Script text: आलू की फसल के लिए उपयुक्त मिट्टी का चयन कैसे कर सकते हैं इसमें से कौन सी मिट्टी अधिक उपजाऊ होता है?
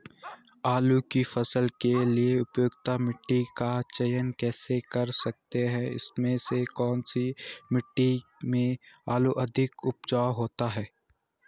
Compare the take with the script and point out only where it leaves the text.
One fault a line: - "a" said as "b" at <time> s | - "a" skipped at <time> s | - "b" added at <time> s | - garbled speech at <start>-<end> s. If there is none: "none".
- "में आलू" added at 8.4 s